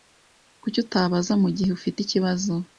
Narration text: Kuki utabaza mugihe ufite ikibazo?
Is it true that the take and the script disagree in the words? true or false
false